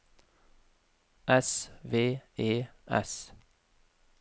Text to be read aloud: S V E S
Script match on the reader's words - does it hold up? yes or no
yes